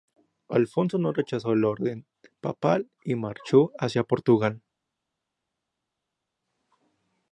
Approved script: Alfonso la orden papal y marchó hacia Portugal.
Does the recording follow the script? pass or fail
fail